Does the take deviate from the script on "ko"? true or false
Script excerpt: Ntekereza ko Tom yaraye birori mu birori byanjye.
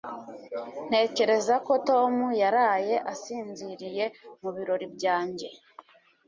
false